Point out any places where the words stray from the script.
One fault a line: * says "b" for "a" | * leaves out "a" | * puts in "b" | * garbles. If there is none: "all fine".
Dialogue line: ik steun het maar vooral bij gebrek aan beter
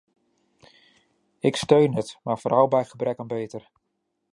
all fine